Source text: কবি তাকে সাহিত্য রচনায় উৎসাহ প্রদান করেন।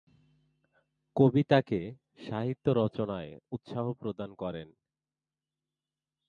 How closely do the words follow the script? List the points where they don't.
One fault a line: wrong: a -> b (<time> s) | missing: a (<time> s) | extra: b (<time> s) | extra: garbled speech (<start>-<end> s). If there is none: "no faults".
no faults